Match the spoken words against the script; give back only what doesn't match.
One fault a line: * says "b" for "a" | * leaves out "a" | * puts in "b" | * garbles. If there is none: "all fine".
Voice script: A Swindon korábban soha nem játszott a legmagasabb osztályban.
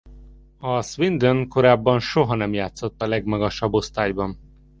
all fine